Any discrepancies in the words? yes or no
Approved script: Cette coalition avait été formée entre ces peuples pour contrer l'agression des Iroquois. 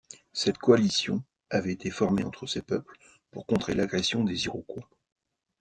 no